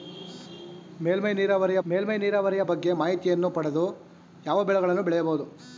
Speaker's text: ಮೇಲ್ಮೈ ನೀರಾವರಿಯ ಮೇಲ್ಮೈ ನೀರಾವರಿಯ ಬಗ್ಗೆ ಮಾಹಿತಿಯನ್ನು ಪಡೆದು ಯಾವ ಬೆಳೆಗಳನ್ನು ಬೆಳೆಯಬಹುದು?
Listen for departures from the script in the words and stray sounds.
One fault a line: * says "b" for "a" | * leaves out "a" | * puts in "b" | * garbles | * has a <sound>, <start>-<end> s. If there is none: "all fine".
all fine